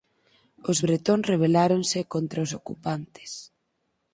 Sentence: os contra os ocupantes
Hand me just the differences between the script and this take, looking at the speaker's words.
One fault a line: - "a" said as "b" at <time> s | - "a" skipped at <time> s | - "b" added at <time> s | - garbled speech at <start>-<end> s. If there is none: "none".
- "bretóns rebeláronse" added at 0.8 s